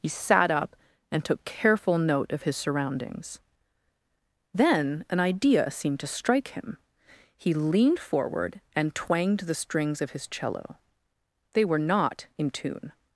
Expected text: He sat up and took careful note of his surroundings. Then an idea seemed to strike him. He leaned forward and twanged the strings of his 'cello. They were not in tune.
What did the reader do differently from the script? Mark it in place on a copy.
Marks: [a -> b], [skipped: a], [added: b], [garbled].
He sat up and took careful note of his surroundings. Then an idea seemed to strike him. He leaned forward and twanged the strings of his 'cello. They were not in tune.